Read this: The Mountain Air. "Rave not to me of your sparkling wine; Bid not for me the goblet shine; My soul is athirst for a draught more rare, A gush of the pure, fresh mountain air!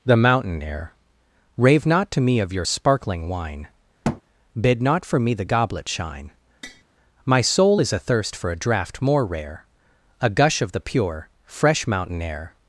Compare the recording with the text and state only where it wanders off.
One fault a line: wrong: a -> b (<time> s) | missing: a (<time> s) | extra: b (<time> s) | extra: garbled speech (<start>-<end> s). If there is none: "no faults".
no faults